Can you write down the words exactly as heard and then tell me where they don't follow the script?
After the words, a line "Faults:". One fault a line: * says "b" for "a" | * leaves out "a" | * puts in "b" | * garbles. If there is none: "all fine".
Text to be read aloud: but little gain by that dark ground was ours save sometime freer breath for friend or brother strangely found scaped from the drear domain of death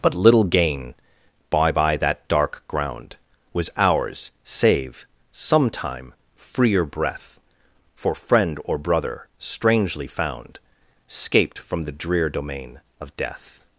but little gain by by that dark ground was ours save sometime freer breath for friend or brother strangely found scaped from the drear domain of death
Faults:
* puts in "by"